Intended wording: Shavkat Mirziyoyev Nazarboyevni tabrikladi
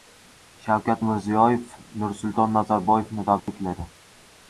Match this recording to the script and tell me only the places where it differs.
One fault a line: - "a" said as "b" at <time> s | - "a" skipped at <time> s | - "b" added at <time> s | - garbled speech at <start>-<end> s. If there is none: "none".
- "Nursulton" added at 2.0 s